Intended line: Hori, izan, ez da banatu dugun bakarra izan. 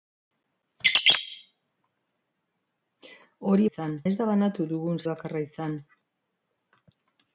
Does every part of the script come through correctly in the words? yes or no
yes